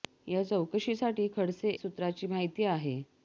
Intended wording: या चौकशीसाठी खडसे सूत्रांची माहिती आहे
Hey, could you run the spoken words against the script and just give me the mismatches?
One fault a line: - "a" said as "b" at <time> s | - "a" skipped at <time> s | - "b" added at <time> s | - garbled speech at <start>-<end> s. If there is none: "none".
none